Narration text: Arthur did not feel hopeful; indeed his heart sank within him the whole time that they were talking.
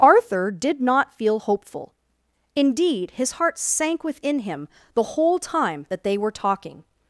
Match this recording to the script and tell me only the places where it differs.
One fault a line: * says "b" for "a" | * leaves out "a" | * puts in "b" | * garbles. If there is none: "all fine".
all fine